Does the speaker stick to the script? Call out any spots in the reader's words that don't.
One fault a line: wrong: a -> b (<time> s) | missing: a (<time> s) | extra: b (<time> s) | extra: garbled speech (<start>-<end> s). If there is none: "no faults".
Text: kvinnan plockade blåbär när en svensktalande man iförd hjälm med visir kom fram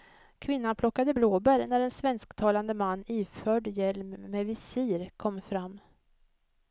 no faults